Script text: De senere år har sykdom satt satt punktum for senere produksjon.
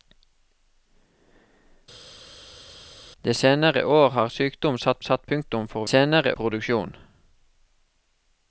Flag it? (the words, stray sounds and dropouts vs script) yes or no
no